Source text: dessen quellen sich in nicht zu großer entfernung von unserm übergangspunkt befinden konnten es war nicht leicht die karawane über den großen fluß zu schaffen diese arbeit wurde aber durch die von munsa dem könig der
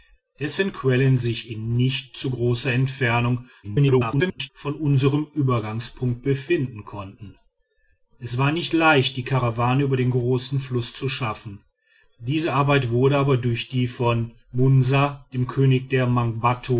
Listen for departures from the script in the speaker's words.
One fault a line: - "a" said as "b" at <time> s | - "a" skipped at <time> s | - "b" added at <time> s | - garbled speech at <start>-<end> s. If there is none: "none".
- garbled speech at 3.6-4.5 s